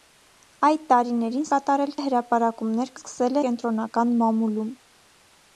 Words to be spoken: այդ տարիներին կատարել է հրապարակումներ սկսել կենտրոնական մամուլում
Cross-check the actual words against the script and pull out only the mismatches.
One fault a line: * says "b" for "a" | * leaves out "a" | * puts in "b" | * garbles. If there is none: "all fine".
all fine